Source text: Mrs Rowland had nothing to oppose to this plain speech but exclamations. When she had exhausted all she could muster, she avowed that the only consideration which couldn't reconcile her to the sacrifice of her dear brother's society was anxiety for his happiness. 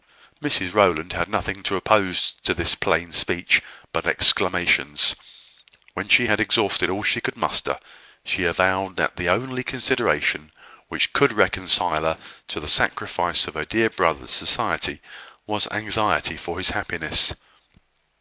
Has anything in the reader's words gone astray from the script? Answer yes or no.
yes